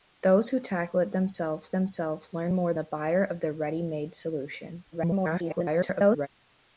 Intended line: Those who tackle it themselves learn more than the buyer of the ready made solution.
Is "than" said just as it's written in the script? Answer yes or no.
no